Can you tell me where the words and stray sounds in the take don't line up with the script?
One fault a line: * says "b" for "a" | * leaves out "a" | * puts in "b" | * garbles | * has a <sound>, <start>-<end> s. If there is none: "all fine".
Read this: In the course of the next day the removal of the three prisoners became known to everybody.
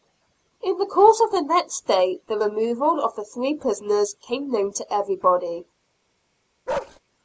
* has a bark, 6.7-7.0 s